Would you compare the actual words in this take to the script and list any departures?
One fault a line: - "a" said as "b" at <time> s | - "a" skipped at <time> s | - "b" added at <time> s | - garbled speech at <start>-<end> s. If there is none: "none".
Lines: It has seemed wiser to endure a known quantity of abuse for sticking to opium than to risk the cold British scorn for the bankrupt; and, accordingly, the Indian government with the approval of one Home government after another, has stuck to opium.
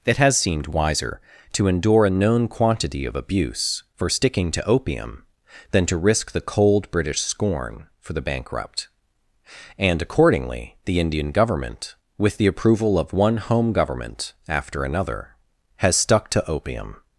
none